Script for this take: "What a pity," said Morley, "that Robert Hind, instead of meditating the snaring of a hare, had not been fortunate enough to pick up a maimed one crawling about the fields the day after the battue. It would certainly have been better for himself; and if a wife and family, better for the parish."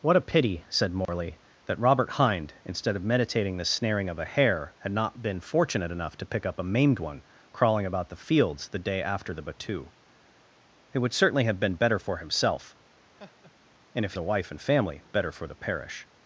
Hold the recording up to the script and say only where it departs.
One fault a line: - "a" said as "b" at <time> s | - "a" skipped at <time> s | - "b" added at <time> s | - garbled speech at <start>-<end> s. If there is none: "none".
none